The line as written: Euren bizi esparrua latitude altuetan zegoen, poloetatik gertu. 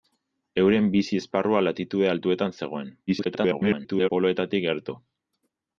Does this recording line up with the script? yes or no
no